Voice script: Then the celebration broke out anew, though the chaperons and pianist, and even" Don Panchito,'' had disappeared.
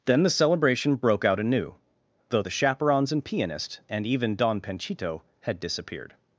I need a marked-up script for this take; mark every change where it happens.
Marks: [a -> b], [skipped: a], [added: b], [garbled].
Then the celebration broke out anew, though the chaperons and pianist, and even" Don Panchito,'' had disappeared.